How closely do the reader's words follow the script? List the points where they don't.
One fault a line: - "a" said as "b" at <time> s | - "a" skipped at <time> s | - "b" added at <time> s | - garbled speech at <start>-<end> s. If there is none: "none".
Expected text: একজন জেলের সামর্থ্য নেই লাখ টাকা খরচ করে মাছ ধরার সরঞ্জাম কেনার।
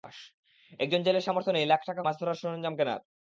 - "খরচ করে" skipped at 2.0 s